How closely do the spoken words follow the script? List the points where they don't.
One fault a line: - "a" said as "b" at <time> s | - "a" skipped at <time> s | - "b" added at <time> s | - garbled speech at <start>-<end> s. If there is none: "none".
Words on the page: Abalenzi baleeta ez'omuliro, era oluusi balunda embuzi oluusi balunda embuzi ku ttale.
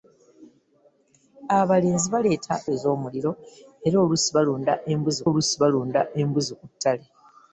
none